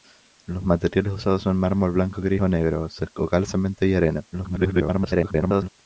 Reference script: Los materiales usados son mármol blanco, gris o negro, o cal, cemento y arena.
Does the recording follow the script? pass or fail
fail